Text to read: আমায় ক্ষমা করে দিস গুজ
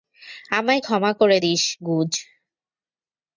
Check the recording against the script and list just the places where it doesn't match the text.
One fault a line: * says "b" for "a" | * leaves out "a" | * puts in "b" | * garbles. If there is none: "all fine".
all fine